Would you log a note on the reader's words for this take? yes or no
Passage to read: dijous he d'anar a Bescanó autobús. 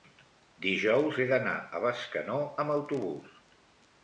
yes